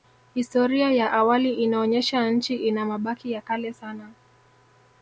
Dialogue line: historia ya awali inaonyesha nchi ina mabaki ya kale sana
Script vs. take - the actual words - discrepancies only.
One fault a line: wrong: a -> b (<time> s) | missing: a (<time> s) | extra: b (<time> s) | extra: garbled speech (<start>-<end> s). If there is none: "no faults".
no faults